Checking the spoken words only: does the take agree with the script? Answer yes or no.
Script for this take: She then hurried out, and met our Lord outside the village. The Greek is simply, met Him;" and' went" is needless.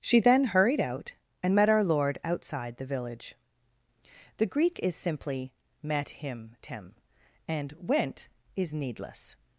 no